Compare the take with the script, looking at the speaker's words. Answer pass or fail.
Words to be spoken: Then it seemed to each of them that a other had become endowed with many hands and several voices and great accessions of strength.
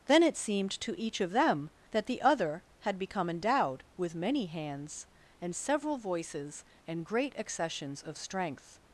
fail